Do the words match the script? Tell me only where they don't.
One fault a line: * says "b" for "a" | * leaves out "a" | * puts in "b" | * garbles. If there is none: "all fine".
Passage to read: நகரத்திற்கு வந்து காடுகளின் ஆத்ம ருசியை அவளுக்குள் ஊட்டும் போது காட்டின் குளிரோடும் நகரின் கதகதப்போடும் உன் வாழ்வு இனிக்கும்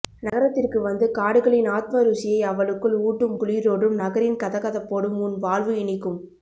* leaves out "போது காட்டின்"